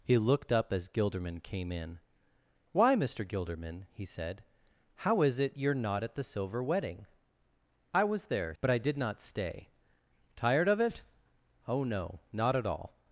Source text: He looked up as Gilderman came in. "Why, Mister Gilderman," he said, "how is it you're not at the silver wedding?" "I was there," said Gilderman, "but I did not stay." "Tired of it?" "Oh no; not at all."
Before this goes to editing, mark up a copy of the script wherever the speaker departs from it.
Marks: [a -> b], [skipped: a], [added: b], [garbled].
He looked up as Gilderman came in. "Why, Mister Gilderman," he said, "how is it you're not at the silver wedding?" "I was there," [skipped: said Gilderman,] "but I did not stay." "Tired of it?" "Oh no; not at all."